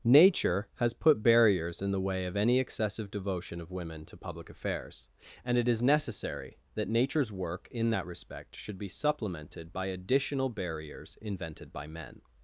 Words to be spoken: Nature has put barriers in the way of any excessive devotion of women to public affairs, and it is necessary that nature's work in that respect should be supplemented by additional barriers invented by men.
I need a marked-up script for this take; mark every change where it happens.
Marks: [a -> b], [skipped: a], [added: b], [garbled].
Nature has put barriers in the way of any excessive devotion of women to public affairs, and it is necessary that nature's work in that respect should be supplemented by additional barriers invented by men.